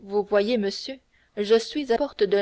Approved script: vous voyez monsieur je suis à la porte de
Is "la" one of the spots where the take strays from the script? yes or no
yes